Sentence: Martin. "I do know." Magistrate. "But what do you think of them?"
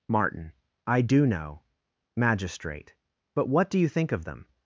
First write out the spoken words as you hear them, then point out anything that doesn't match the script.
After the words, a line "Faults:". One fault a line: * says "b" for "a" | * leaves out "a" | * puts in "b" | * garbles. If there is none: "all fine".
Martin. "I do know." Magistrate. "But what do you think of them?"
Faults:
all fine